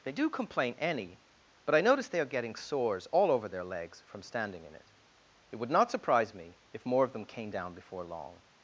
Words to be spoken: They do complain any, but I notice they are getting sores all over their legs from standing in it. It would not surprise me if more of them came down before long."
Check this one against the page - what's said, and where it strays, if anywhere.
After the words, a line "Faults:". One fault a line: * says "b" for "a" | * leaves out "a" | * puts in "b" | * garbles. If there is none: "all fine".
They do complain any, but I notice they are getting sores all over their legs from standing in it. It would not surprise me if more of them came down before long."
Faults:
all fine